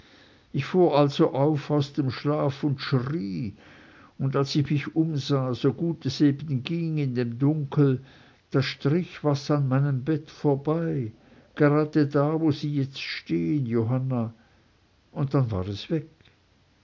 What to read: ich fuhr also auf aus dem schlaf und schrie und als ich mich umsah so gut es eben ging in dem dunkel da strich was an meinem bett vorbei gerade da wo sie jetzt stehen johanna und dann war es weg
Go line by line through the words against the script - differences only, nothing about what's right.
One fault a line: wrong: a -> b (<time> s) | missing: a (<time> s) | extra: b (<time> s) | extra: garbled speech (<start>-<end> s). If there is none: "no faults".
no faults